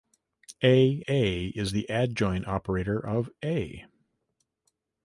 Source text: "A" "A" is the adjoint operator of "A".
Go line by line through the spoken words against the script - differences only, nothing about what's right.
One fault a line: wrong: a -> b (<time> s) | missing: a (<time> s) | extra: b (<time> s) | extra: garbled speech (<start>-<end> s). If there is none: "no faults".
no faults